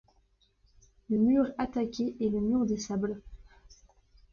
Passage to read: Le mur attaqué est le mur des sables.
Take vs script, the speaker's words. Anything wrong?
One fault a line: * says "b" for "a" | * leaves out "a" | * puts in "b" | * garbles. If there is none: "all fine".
all fine